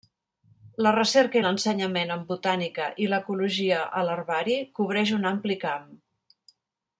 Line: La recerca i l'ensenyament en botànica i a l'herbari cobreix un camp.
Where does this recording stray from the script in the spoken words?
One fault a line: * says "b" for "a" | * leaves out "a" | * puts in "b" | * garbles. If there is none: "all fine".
* puts in "l'ecologia"
* puts in "ampli"